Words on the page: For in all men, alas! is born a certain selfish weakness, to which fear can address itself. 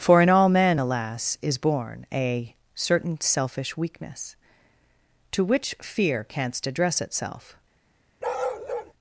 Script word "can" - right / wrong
wrong